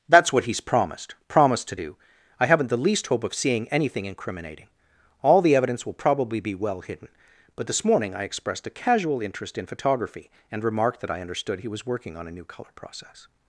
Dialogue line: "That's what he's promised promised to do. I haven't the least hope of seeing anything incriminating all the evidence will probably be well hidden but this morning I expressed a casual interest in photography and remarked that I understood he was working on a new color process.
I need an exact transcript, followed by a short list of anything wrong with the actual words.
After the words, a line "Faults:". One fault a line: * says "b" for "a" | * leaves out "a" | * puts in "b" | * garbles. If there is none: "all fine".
"That's what he's promised promised to do. I haven't the least hope of seeing anything incriminating all the evidence will probably be well hidden but this morning I expressed a casual interest in photography and remarked that I understood he was working on a new color process.
Faults:
all fine